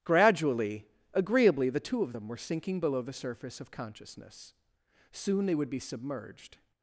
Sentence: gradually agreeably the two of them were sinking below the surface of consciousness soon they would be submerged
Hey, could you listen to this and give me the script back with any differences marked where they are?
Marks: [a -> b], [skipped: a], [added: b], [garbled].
gradually agreeably the two of them were sinking below the surface of consciousness soon they would be submerged